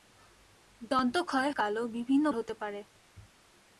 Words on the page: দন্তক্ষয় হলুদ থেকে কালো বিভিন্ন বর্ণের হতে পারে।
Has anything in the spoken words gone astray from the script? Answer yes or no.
yes